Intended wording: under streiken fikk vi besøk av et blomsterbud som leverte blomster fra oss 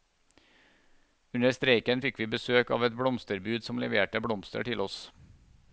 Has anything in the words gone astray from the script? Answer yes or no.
yes